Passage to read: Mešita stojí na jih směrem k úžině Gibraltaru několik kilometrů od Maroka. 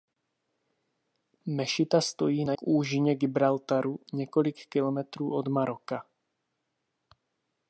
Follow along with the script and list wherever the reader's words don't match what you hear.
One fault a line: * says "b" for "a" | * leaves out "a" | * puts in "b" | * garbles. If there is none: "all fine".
* leaves out "jih směrem"